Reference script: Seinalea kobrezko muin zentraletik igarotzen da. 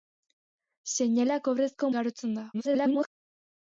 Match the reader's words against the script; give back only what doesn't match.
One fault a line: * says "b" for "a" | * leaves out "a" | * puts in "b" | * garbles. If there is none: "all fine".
* leaves out "muin zentraletik"
* garbles